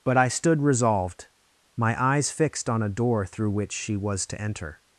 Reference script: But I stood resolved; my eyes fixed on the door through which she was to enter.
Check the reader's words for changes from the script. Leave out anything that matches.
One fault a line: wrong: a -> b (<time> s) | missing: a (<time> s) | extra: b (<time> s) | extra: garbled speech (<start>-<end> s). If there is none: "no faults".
wrong: the -> a (2.8 s)